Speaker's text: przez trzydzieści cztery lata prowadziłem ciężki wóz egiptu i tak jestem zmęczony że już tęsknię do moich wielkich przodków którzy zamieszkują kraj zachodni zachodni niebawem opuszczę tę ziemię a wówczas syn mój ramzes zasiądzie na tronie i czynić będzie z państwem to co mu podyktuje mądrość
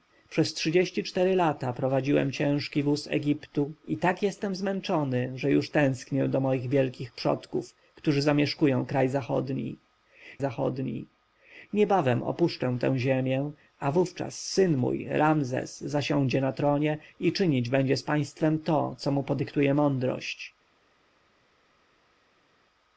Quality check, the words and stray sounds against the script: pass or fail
pass